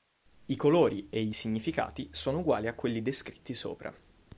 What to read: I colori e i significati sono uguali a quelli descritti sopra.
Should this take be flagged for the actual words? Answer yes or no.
no